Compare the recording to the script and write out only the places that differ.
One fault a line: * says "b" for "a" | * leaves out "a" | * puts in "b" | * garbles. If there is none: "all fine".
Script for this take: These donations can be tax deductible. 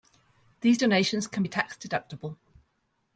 all fine